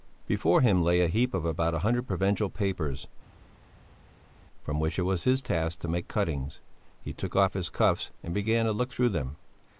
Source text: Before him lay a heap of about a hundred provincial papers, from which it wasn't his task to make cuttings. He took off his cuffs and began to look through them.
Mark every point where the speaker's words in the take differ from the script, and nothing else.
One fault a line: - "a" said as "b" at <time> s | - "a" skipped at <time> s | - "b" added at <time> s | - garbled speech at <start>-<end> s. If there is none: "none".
- "wasn't" said as "was" at 5.0 s